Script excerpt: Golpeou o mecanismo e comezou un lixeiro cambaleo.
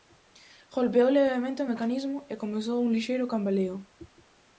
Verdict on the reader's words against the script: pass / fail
fail